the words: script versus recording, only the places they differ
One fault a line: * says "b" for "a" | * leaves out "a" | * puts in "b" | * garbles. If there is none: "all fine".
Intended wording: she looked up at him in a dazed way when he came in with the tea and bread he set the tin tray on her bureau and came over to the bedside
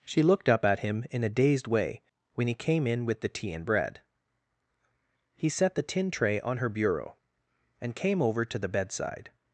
all fine